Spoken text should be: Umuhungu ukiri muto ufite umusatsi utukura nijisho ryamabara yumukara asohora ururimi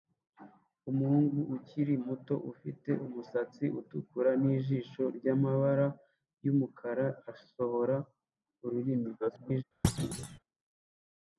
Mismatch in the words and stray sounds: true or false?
true